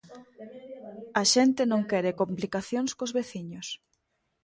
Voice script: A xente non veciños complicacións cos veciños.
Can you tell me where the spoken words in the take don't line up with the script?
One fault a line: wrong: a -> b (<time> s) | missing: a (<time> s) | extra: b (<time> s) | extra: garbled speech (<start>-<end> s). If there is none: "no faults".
wrong: veciños -> quere (1.9 s)